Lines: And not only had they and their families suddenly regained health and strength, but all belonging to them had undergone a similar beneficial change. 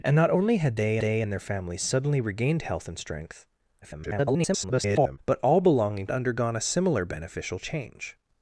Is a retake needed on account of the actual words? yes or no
yes